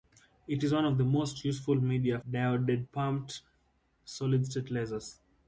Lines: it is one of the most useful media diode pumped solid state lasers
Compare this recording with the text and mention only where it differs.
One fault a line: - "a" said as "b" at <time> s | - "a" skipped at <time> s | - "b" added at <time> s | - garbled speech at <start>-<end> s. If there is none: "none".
none